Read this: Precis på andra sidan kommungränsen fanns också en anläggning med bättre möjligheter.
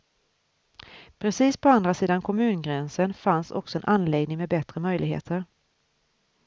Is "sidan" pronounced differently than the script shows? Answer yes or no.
no